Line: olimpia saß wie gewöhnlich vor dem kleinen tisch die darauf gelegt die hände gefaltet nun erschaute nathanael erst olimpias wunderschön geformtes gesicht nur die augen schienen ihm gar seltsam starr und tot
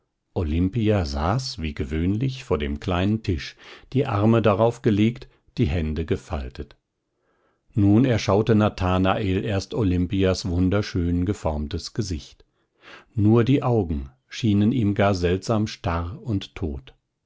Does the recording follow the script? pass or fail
fail